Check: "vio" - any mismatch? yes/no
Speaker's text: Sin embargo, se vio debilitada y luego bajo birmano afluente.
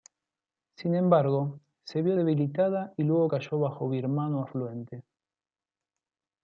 no